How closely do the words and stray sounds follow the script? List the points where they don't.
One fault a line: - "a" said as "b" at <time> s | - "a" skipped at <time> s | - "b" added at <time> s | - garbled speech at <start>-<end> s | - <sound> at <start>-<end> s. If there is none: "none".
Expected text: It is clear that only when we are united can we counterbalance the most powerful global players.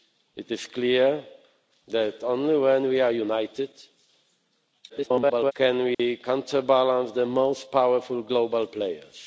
- garbled speech at 4.9-5.5 s
- dropout at 5.9-6.0 s